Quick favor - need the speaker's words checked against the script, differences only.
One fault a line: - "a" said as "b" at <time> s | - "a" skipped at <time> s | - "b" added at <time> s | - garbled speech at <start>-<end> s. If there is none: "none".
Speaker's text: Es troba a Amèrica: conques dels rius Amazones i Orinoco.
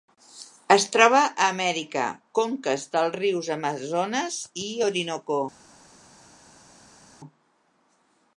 none